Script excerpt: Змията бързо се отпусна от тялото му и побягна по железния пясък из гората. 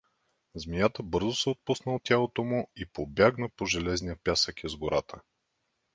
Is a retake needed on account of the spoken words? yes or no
no